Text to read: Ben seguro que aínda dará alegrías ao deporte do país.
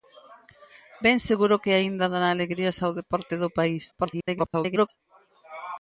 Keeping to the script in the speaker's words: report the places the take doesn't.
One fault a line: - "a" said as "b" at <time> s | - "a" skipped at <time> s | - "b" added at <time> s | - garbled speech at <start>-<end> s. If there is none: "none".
- garbled speech at 3.9-4.9 s